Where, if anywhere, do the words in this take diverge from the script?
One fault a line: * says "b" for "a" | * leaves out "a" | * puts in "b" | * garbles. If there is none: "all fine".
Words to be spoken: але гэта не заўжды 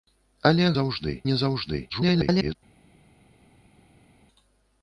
* says "заўжды" for "гэта"
* garbles